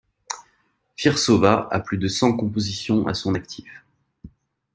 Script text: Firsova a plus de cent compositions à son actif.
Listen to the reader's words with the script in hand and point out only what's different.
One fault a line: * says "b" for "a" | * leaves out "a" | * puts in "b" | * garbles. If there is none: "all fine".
all fine